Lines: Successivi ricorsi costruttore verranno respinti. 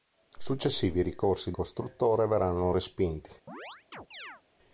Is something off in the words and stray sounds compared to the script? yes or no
yes